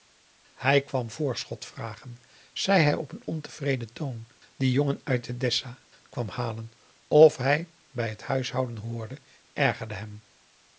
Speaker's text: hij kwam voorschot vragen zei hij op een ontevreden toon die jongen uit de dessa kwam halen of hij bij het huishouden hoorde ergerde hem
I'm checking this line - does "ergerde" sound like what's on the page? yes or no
yes